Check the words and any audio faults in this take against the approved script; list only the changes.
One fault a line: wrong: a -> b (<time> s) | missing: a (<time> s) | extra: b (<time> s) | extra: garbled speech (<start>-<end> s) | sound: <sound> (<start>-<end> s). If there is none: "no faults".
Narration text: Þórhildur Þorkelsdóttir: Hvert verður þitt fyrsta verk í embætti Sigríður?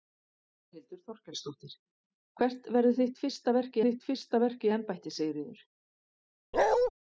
extra: þitt fyrsta verk (3.9 s)
sound: bark (6.5-6.9 s)